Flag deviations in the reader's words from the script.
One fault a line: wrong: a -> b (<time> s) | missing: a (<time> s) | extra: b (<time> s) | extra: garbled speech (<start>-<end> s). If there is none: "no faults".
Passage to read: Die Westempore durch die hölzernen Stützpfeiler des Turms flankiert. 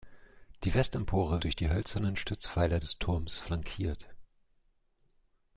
no faults